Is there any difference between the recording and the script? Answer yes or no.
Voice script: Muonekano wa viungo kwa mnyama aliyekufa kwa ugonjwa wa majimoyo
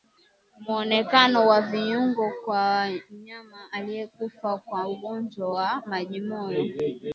no